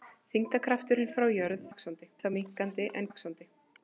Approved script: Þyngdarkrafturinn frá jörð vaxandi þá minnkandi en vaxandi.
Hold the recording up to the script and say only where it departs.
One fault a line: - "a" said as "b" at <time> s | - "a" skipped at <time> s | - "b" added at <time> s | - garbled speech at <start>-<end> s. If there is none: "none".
none